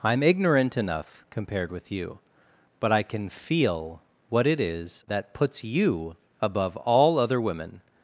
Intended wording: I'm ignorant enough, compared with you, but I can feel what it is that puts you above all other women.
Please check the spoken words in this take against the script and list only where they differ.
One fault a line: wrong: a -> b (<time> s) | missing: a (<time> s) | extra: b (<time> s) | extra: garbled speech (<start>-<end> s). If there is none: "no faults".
no faults